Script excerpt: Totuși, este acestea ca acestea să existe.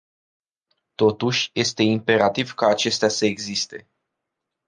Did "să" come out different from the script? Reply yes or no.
no